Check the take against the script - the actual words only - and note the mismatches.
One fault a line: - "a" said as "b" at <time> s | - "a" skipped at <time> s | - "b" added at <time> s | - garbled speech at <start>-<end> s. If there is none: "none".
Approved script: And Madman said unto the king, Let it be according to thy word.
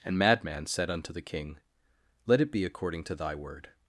none